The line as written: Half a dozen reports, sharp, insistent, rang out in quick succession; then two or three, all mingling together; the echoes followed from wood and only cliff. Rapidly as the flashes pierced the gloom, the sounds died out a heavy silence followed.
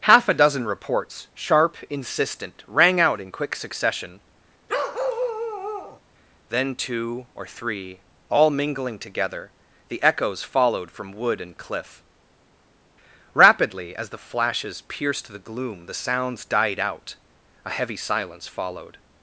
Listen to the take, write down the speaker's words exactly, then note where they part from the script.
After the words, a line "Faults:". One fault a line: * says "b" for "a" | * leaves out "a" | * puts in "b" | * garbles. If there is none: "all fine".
Half a dozen reports, sharp, insistent, rang out in quick succession; then two or three, all mingling together; the echoes followed from wood and cliff. Rapidly as the flashes pierced the gloom, the sounds died out a heavy silence followed.
Faults:
* leaves out "only"